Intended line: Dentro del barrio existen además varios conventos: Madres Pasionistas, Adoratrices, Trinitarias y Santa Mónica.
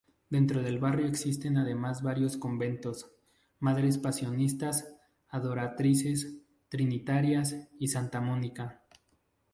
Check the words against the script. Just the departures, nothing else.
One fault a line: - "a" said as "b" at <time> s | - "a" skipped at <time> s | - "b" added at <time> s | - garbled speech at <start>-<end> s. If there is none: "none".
none